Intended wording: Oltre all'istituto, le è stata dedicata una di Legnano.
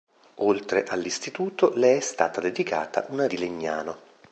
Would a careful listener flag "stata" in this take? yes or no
no